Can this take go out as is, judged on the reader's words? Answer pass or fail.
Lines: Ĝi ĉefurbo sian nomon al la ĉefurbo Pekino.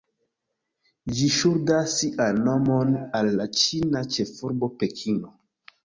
fail